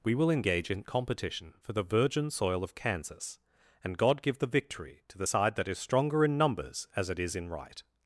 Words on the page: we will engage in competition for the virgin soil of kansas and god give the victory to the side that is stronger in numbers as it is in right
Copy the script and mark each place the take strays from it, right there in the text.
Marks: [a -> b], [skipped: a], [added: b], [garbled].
we will engage in competition for the virgin soil of kansas and god give the victory to the side that is stronger in numbers as it is in right